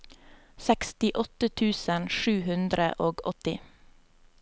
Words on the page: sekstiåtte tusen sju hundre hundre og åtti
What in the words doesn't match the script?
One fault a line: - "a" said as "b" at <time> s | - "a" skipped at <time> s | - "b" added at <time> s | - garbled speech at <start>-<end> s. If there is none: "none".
- "hundre" skipped at 2.9 s